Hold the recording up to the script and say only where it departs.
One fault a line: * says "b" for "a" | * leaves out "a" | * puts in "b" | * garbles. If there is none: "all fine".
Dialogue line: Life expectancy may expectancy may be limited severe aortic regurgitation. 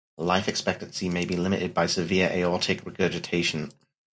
* leaves out "expectancy may"
* puts in "by"